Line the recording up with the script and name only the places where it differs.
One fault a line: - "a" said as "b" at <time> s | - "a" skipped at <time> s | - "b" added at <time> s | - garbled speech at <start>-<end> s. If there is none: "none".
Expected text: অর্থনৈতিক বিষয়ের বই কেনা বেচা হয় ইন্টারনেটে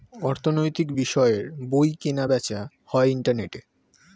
none